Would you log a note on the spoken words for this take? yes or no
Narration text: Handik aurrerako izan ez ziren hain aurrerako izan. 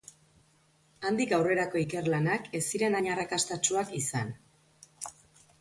yes